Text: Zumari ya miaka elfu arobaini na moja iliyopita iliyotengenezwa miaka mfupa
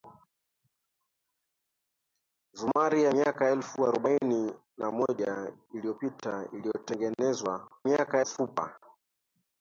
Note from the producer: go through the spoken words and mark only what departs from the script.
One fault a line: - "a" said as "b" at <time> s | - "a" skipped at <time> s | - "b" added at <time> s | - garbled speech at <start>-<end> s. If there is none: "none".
none